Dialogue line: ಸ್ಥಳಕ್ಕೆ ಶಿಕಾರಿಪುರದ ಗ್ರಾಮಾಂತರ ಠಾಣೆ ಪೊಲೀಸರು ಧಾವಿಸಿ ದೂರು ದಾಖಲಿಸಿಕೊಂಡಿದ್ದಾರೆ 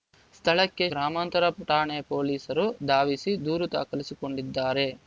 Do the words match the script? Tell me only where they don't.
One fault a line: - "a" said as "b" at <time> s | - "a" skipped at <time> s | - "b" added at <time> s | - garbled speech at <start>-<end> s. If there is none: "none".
- "ಶಿಕಾರಿಪುರದ" skipped at 0.8 s